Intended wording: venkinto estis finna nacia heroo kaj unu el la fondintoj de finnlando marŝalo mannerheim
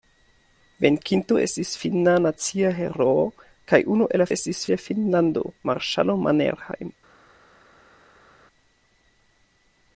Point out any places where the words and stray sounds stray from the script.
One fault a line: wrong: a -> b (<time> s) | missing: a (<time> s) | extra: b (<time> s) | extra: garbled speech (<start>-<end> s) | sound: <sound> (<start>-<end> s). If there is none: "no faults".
wrong: fondintoj -> estis (4.3 s)